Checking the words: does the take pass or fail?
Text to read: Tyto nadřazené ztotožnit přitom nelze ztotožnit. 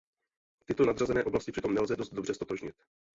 fail